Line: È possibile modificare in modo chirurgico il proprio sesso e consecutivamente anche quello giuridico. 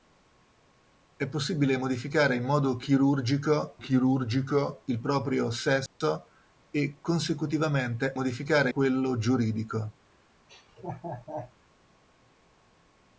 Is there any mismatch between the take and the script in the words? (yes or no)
yes